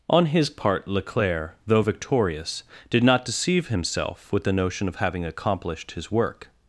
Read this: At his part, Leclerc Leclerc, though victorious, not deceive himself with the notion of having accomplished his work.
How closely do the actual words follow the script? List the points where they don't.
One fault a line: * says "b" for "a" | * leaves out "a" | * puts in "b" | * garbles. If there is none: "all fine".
* says "On" for "At"
* leaves out "Leclerc"
* puts in "did"